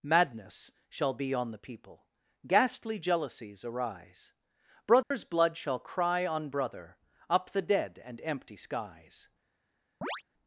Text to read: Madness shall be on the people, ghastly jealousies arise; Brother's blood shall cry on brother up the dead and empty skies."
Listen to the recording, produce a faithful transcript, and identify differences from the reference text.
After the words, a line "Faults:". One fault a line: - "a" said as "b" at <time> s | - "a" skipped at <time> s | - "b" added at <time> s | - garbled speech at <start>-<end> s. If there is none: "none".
Madness shall be on the people, ghastly jealousies arise; Brother's blood shall cry on brother up the dead and empty skies."
Faults:
none